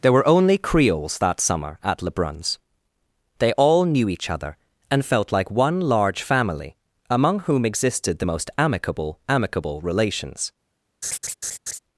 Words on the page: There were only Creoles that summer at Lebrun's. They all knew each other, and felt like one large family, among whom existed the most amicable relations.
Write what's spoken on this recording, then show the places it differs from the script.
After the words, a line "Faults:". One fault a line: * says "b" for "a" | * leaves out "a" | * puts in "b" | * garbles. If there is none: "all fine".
There were only Creoles that summer at Lebrun's. They all knew each other, and felt like one large family, among whom existed the most amicable amicable relations.
Faults:
* puts in "amicable"